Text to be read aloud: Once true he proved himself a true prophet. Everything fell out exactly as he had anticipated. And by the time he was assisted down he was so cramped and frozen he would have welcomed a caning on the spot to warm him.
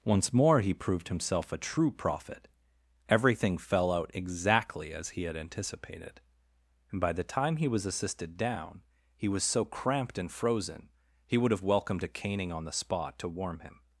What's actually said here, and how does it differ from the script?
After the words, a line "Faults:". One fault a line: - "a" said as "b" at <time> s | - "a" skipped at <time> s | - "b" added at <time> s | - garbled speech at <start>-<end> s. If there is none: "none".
Once more he proved himself a true prophet. Everything fell out exactly as he had anticipated. And by the time he was assisted down he was so cramped and frozen he would have welcomed a caning on the spot to warm him.
Faults:
- "true" said as "more" at 0.3 s